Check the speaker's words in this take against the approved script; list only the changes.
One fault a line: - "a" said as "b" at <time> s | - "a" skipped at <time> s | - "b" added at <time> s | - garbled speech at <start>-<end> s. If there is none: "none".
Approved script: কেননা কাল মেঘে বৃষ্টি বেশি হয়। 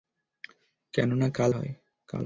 - "মেঘে বৃষ্টি বেশি" skipped at 1.5 s